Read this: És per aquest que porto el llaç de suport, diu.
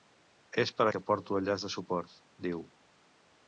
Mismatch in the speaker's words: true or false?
true